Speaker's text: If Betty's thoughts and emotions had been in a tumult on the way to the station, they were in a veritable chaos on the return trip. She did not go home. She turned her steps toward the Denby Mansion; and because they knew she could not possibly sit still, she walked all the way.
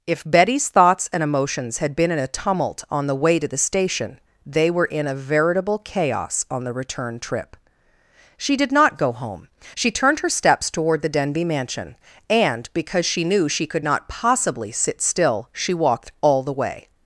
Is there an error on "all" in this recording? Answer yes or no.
no